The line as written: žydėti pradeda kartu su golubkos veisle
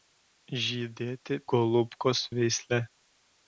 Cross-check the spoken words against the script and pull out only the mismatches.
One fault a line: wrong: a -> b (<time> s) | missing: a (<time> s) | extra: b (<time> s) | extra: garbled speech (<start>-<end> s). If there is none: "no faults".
missing: pradeda kartu su (1.4 s)